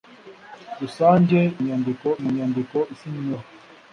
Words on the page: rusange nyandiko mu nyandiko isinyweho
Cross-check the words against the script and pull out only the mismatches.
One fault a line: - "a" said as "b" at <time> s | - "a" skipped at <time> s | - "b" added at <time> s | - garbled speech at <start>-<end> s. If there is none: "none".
none